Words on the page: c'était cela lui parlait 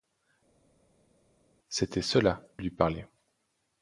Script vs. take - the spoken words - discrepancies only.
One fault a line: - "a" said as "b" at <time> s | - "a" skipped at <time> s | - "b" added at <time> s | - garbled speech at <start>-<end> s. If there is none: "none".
none